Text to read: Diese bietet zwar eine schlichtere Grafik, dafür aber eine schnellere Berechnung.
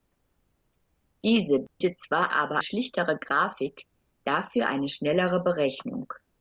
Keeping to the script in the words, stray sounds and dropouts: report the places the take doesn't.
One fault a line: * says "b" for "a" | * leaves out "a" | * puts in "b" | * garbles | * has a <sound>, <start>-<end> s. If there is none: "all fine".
* has a dropout, 1.7-1.8 s
* says "aber" for "eine"
* leaves out "aber"